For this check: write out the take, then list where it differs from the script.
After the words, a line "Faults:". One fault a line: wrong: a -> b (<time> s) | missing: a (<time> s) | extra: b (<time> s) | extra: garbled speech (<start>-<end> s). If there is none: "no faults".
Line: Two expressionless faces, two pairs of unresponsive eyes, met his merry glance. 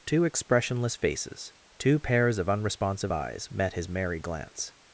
Two expressionless faces, two pairs of unresponsive eyes, met his merry glance.
Faults:
no faults